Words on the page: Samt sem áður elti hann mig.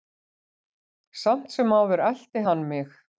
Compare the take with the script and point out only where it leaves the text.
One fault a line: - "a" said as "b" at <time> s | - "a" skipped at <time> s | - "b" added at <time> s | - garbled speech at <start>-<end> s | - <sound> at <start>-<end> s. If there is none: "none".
none